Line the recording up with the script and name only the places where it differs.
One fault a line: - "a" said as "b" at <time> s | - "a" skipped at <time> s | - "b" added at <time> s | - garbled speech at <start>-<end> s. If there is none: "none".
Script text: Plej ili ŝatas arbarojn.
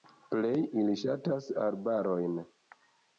none